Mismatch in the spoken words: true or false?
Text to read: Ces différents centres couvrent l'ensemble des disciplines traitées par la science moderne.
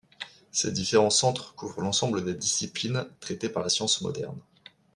false